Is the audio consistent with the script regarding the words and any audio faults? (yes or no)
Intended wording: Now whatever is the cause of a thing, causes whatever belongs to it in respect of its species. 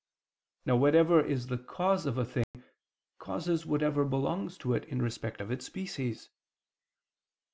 no